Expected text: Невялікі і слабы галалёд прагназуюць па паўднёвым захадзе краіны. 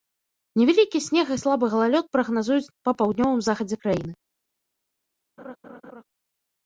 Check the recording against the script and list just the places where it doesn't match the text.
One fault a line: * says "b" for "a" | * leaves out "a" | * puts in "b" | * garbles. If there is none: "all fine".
* puts in "снег"